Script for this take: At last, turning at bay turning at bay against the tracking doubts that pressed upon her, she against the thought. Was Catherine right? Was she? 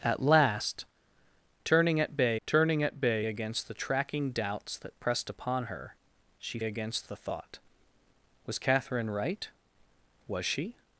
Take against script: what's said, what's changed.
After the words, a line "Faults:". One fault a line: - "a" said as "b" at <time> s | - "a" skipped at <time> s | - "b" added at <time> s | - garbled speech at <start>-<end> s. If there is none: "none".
At last, turning at bay turning at bay against the tracking doubts that pressed upon her, she against the thought. Was Catherine right? Was she?
Faults:
none